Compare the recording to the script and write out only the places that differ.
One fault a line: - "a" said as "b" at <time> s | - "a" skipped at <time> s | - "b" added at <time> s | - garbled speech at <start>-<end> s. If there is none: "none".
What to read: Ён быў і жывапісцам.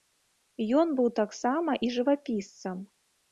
- "таксама" added at 1.2 s